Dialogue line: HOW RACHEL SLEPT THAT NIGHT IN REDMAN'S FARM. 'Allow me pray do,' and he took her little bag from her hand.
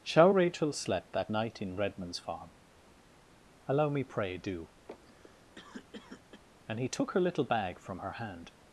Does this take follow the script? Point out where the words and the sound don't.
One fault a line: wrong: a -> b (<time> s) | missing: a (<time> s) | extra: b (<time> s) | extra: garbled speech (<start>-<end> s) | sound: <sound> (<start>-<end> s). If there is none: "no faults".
wrong: HOW -> Shall (0.0 s)
sound: cough (4.9-6.4 s)